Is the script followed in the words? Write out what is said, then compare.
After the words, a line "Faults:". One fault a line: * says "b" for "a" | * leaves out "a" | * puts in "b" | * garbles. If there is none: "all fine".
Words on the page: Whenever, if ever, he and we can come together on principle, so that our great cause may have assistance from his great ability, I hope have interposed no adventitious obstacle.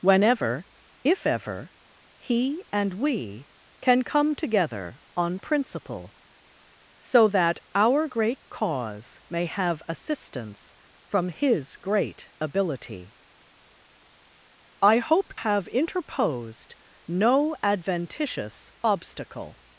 Whenever, if ever, he and we can come together on principle, so that our great cause may have assistance from his great ability, I hope have interposed no adventitious obstacle.
Faults:
all fine